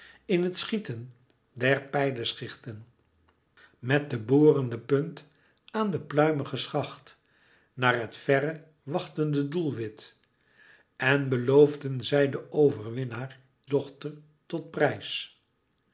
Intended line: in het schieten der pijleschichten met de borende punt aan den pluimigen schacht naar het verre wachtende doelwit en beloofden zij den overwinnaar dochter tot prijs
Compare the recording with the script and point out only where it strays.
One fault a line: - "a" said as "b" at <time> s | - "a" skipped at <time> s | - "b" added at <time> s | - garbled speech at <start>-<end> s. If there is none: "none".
none